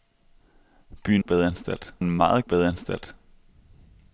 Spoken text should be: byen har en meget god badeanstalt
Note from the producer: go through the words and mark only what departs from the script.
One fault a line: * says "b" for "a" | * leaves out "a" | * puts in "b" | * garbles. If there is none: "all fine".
* says "badeanstalt" for "har"
* leaves out "god"